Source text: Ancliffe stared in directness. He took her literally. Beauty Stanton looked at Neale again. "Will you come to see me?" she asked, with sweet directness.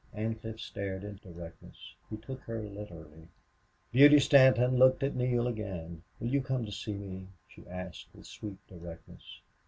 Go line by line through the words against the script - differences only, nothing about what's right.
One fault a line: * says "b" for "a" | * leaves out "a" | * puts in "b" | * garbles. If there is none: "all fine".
all fine